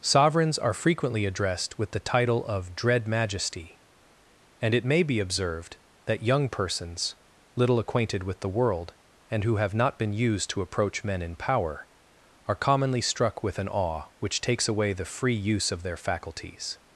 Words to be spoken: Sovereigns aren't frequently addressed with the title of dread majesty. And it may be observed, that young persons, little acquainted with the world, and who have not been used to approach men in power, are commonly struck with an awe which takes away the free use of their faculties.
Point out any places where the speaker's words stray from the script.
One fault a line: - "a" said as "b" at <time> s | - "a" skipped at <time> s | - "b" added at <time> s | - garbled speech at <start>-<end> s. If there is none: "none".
- "aren't" said as "are" at 0.6 s